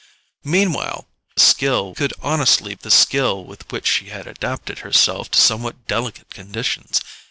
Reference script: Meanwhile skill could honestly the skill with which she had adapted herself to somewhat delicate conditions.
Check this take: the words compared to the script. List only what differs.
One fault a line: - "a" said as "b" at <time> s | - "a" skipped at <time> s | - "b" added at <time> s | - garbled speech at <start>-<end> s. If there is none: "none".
none